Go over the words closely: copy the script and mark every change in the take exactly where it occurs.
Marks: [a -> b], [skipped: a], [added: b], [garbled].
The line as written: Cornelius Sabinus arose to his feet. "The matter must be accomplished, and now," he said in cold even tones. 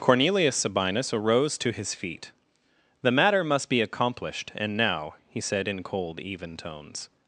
Cornelius Sabinus arose to his feet. "The matter must be accomplished, and now," he said in cold even tones.